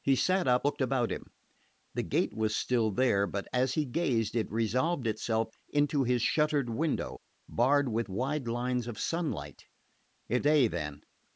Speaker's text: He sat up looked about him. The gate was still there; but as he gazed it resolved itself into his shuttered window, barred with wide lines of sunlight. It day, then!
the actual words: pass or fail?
pass